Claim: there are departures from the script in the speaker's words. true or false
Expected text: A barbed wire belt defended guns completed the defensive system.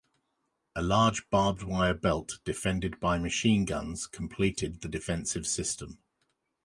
true